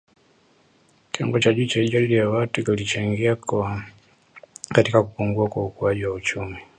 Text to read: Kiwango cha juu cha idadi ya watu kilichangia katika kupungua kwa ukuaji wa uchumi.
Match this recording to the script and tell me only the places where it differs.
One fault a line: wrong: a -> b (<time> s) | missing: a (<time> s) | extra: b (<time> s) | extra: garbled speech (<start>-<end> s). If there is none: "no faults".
no faults